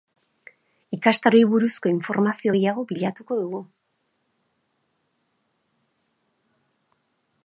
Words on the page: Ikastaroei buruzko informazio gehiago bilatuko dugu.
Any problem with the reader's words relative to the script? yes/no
no